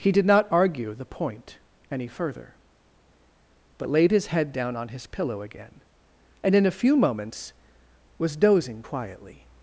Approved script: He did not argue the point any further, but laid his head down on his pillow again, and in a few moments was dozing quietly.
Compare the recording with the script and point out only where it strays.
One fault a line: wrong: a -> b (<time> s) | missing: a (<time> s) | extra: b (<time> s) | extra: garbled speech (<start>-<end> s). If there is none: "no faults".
no faults